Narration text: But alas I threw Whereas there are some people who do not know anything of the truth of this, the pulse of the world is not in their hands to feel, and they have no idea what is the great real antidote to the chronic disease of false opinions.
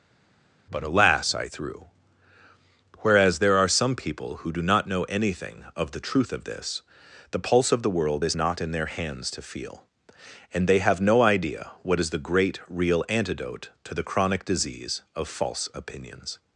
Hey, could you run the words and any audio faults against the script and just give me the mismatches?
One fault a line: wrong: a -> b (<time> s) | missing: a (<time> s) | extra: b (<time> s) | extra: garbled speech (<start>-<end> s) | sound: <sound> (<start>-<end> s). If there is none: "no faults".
no faults